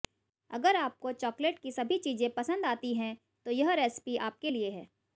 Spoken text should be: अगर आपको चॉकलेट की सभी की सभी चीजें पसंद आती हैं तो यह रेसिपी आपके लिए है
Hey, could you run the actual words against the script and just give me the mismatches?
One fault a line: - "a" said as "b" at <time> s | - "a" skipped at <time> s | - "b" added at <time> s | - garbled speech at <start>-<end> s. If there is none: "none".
- "की सभी" skipped at 2.0 s